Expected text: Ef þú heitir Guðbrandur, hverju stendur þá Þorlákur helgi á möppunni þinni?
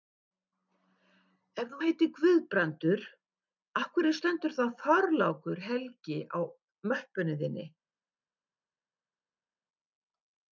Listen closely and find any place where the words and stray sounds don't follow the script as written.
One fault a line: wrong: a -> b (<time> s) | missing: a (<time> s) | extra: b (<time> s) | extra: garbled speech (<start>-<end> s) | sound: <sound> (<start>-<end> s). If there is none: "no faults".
extra: af (3.8 s)